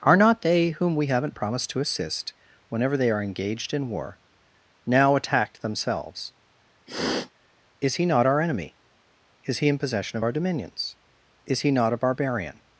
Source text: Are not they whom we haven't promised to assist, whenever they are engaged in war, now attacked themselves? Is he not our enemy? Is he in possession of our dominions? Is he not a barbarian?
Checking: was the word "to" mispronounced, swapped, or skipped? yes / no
no